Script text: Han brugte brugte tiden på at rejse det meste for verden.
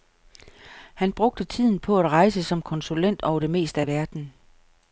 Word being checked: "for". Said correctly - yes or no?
no